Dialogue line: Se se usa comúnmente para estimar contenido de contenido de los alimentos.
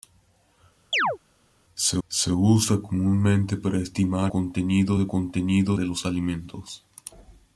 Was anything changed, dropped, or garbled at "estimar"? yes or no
no